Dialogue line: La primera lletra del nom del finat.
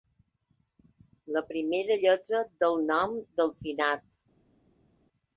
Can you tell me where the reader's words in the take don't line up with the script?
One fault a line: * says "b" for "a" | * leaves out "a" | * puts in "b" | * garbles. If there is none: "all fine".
all fine